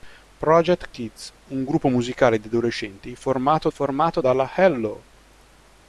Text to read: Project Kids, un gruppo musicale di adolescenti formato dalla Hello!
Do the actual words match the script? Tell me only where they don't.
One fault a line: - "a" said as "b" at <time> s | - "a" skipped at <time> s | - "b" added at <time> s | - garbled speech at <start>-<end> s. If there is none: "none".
- "formato" added at 3.7 s